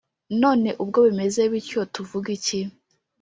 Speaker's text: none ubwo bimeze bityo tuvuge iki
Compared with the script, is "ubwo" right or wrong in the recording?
right